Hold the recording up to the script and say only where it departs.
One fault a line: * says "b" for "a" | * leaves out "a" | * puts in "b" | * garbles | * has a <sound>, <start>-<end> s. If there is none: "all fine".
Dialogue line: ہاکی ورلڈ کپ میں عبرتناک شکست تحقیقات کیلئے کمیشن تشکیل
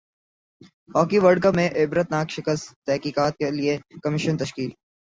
all fine